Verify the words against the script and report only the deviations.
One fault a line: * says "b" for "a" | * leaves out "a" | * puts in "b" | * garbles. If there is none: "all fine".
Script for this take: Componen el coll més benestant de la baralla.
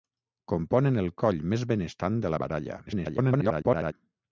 * garbles